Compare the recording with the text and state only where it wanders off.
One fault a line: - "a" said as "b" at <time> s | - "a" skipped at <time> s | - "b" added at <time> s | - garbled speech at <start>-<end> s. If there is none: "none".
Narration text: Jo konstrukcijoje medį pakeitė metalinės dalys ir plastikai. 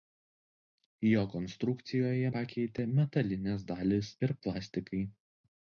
- "medį" skipped at 2.3 s